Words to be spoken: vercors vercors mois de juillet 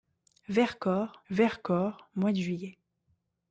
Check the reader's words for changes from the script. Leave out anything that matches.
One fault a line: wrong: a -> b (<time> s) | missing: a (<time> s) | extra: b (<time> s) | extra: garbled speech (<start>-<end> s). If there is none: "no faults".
no faults